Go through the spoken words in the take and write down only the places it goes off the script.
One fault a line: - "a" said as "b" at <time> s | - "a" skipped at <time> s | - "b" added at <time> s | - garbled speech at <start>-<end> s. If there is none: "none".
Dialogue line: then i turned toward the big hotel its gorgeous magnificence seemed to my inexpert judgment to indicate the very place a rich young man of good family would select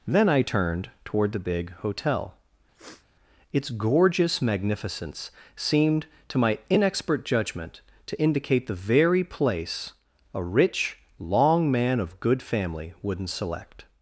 - "young" said as "long" at 11.2 s
- "would" said as "wouldn't" at 13.0 s